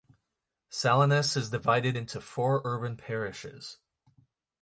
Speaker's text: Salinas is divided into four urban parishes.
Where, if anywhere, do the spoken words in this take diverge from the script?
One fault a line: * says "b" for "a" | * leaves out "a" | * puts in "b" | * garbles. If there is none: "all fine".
all fine